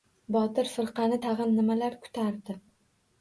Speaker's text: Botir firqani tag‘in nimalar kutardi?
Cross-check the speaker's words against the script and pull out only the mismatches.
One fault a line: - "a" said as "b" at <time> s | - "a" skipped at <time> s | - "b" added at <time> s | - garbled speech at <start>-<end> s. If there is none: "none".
none